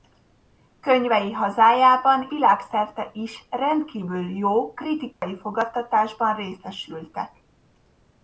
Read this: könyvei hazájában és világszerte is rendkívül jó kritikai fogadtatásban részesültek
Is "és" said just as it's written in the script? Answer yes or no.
no